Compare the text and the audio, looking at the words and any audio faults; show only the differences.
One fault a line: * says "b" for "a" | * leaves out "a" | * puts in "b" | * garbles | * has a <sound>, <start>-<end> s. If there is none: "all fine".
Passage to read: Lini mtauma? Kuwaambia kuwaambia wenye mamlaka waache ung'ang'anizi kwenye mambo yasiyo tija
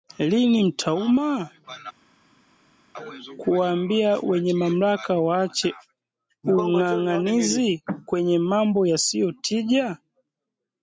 * leaves out "kuwaambia"